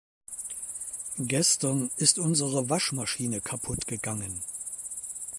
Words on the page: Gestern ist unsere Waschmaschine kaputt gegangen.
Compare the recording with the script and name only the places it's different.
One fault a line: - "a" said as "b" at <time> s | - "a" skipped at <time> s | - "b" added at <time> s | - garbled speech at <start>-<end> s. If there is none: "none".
none